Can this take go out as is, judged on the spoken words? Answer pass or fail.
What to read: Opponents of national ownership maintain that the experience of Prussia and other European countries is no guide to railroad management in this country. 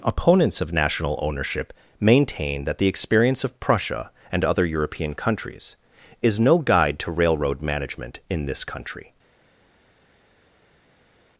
pass